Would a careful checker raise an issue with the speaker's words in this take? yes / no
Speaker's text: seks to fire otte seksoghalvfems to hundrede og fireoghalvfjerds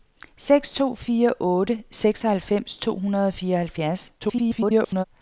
yes